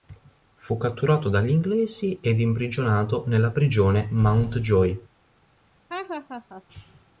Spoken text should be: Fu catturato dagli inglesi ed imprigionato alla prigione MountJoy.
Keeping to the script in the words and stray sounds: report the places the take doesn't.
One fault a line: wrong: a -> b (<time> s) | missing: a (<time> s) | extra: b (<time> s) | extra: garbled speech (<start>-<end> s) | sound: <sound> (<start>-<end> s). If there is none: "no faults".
wrong: alla -> nella (3.3 s)
sound: laugh (5.9-6.6 s)